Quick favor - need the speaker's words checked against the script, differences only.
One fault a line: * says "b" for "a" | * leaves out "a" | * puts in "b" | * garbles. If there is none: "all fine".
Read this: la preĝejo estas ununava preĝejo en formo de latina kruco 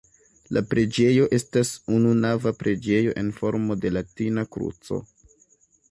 all fine